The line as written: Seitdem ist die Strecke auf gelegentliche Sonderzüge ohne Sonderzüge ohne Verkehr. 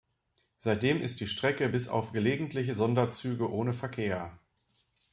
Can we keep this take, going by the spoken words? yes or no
no